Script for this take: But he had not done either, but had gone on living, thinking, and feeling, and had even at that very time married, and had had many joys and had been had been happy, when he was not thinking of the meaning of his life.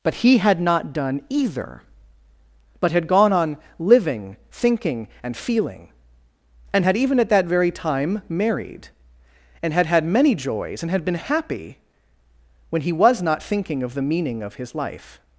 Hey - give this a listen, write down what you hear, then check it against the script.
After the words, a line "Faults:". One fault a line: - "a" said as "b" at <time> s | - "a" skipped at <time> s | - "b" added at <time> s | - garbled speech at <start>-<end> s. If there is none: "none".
But he had not done either, but had gone on living, thinking, and feeling, and had even at that very time married, and had had many joys and had been happy, when he was not thinking of the meaning of his life.
Faults:
- "had been" skipped at 11.2 s